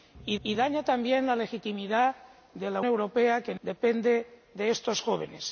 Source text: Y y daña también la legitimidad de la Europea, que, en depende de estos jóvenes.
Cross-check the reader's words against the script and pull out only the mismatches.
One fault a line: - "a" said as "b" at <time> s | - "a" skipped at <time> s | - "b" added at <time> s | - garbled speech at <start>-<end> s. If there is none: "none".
none